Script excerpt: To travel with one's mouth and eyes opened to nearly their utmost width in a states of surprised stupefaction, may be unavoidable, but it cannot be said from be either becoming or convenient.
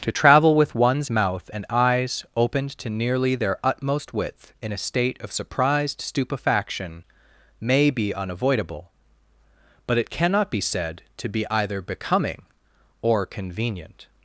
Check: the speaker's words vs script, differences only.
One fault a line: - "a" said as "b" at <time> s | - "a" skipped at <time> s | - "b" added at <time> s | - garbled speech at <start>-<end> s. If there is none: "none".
- "states" said as "state" at 4.8 s
- "from" said as "to" at 11.2 s